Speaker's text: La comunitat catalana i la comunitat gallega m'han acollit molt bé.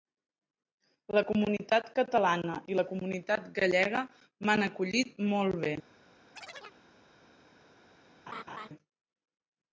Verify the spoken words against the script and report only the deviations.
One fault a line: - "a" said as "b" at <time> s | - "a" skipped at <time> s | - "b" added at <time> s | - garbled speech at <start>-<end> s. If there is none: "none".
none